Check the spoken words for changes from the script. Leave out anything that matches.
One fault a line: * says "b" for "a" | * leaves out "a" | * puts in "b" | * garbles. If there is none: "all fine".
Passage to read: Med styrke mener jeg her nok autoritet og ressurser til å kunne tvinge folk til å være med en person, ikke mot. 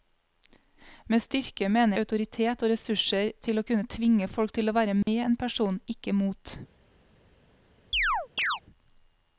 * leaves out "jeg her nok"